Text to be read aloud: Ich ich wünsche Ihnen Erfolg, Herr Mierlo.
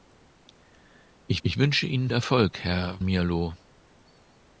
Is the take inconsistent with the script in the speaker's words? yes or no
no